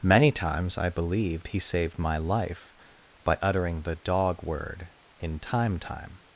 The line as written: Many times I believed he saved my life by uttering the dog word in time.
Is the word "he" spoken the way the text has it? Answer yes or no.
yes